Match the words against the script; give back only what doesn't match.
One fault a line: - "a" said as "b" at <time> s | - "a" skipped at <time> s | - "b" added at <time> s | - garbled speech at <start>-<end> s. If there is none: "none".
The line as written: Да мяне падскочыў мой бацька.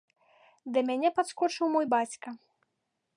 none